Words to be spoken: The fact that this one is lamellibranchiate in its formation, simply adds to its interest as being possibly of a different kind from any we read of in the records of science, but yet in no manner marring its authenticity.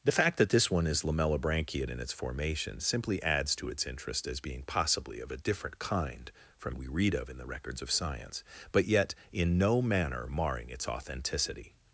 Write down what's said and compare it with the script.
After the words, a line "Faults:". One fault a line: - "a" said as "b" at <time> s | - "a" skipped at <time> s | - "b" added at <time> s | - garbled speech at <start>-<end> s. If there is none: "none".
The fact that this one is lamellibranchiate in its formation, simply adds to its interest as being possibly of a different kind from we read of in the records of science, but yet in no manner marring its authenticity.
Faults:
- "any" skipped at 6.8 s